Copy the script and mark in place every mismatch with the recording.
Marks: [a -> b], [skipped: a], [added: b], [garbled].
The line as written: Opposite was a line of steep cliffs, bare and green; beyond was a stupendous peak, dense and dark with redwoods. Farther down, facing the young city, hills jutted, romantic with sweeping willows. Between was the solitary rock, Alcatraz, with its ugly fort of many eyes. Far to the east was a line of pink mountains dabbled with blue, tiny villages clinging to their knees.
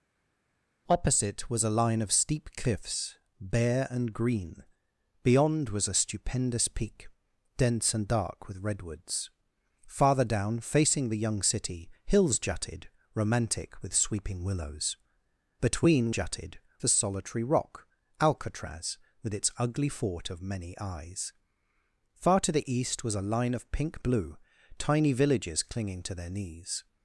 Opposite was a line of steep cliffs, bare and green; beyond was a stupendous peak, dense and dark with redwoods. Farther down, facing the young city, hills jutted, romantic with sweeping willows. Between [was -> jutted] the solitary rock, Alcatraz, with its ugly fort of many eyes. Far to the east was a line of pink [skipped: mountains dabbled with] blue, tiny villages clinging to their knees.